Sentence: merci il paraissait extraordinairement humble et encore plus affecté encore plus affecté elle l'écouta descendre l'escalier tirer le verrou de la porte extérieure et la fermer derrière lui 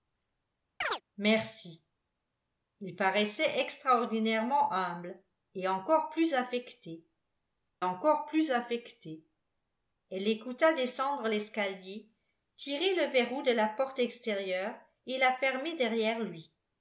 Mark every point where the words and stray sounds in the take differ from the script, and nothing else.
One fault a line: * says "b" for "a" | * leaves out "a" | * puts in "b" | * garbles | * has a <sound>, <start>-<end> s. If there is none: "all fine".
* has a chirp, 0.8-1.0 s